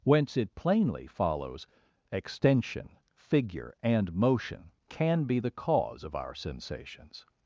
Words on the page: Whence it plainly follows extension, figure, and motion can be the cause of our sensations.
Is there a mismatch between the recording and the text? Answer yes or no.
no